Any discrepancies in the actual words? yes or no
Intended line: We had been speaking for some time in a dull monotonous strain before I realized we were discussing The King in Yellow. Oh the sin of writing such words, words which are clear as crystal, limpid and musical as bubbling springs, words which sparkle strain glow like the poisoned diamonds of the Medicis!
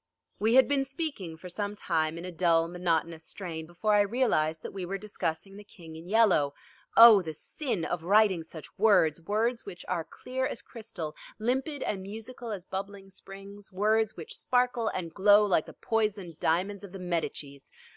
yes